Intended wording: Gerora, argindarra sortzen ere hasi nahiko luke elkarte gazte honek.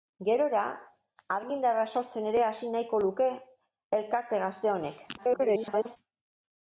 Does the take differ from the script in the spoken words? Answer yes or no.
yes